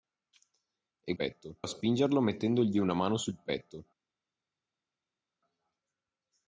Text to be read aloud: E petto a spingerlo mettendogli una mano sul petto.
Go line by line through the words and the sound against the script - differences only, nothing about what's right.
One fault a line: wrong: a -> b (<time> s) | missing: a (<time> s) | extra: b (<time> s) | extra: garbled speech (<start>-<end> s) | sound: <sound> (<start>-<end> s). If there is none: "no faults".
no faults